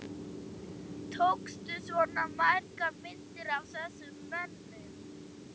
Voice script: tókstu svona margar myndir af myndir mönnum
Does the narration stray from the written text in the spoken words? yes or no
yes